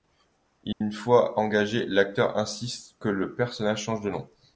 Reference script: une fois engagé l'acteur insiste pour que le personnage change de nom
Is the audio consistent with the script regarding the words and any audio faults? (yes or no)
no